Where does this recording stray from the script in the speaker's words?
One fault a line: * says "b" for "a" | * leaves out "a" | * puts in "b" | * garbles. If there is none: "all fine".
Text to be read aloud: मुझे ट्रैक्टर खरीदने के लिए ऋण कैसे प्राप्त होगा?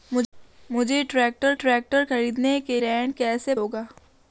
* puts in "ट्रैक्टर"
* leaves out "लिए"
* leaves out "प्राप्त"